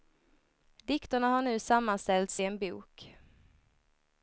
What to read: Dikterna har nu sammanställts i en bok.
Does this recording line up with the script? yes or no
yes